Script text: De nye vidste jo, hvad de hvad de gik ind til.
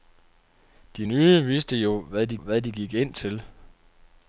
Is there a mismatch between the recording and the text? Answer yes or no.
no